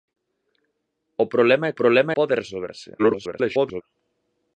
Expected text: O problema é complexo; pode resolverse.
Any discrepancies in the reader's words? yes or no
yes